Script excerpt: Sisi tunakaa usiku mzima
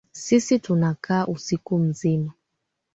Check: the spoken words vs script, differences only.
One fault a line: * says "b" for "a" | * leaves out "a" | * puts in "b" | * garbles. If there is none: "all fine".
all fine